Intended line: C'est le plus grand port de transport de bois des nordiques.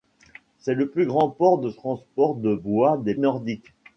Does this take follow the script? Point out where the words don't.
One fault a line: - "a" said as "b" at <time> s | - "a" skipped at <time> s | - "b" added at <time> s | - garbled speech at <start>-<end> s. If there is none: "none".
none